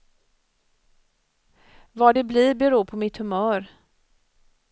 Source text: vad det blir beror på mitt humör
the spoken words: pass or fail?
pass